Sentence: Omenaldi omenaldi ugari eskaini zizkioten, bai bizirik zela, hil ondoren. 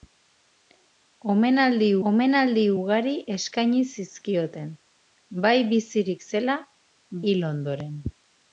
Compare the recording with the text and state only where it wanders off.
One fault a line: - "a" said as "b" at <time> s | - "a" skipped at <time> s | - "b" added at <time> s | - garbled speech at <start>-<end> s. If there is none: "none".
none